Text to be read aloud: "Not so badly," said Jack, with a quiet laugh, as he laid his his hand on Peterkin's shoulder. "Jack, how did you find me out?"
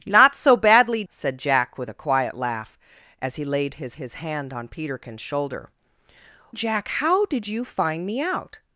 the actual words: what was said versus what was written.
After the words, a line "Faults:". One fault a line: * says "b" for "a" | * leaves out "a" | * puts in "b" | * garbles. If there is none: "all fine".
"Not so badly," said Jack, with a quiet laugh, as he laid his his hand on Peterkin's shoulder. "Jack, how did you find me out?"
Faults:
all fine